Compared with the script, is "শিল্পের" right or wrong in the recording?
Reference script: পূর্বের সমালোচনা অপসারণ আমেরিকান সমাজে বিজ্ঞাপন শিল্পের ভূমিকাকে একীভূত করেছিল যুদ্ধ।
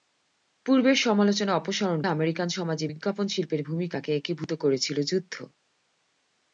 right